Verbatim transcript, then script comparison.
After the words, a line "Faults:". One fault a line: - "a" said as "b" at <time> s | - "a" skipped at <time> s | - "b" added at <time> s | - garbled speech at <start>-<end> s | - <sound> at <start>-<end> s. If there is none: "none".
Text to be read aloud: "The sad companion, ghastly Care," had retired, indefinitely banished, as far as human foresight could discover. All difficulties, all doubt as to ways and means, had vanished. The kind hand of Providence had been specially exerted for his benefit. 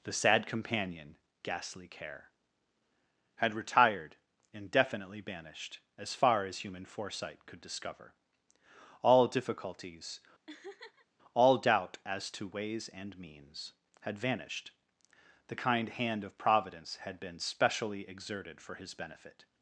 "The sad companion, ghastly Care," had retired, indefinitely banished, as far as human foresight could discover. All difficulties, all doubt as to ways and means, had vanished. The kind hand of Providence had been specially exerted for his benefit.
Faults:
- laugh at 10.5-11.1 s